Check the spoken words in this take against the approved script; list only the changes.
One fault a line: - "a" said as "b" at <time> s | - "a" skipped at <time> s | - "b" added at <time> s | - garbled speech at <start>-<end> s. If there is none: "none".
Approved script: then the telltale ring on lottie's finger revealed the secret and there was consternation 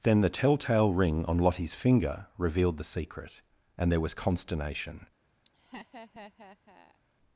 none